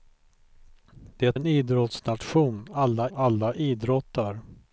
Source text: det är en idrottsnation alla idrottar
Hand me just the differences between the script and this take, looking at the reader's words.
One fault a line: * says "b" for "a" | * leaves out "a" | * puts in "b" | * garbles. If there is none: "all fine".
* leaves out "är"
* puts in "alla"